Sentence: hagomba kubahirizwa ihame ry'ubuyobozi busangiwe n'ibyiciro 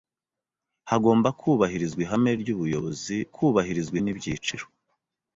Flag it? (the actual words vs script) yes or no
yes